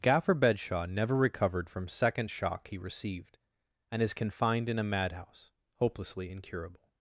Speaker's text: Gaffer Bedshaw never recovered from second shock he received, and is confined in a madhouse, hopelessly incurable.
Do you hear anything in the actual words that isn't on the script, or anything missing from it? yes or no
no